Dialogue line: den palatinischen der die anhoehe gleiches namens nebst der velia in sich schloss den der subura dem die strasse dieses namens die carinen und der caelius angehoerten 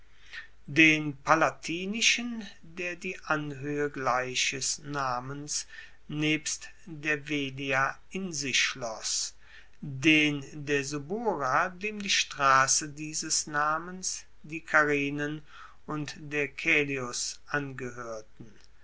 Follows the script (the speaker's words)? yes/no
yes